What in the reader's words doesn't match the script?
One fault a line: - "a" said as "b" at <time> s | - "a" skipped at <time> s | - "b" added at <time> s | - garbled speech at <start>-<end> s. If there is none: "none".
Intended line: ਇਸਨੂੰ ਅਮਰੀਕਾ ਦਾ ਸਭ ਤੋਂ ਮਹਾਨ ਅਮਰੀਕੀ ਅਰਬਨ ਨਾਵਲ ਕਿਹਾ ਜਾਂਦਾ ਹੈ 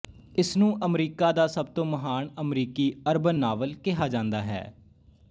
none